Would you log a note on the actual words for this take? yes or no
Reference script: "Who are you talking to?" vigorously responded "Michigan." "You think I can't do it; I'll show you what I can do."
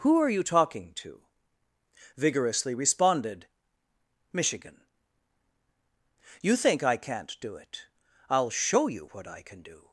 no